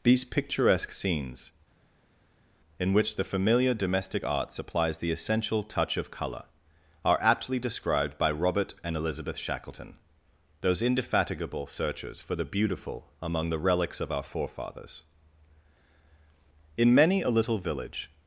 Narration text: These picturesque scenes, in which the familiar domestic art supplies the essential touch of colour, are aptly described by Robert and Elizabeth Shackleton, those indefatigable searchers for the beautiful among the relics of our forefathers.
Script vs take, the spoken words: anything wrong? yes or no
yes